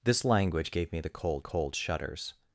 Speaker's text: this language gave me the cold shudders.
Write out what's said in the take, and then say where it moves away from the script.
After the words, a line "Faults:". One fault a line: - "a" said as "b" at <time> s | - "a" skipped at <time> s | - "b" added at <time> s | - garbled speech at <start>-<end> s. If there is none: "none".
this language gave me the cold cold shudders.
Faults:
- "cold" added at 1.4 s